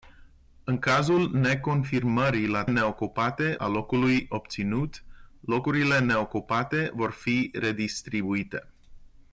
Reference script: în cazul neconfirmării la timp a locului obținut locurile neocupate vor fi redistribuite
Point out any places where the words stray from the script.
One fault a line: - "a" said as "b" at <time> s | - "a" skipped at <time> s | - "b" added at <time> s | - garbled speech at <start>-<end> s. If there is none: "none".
- "timp" said as "neocupate" at 2.7 s